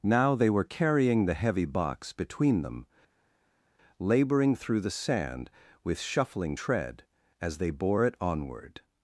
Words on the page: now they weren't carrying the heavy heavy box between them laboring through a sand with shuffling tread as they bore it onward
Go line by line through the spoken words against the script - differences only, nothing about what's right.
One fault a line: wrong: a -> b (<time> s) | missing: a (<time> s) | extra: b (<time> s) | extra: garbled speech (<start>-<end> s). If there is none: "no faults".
wrong: weren't -> were (0.5 s)
missing: heavy (1.6 s)
wrong: a -> the (4.8 s)